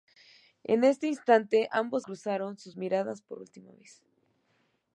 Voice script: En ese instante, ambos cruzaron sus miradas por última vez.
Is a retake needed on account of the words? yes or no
no